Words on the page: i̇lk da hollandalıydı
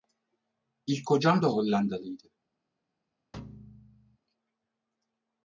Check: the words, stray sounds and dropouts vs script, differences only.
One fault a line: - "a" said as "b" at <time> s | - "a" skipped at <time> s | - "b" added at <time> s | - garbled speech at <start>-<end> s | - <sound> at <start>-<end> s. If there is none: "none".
- "kocam" added at 1.0 s
- thud at 3.3-4.2 s